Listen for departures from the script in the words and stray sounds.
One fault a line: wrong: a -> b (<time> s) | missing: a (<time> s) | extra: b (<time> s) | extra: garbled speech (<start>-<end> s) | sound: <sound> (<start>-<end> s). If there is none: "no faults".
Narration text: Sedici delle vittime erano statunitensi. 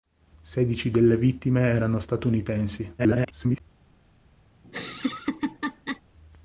extra: garbled speech (3.0-3.6 s)
sound: laugh (4.6-6.0 s)